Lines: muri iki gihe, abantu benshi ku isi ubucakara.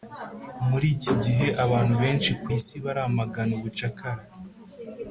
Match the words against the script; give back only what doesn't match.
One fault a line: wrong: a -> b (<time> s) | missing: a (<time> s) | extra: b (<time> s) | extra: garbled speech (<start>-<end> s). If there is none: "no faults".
extra: baramagana (2.8 s)